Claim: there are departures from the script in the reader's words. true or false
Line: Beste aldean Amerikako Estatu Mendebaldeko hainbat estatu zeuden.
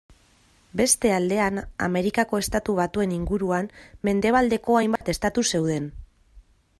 true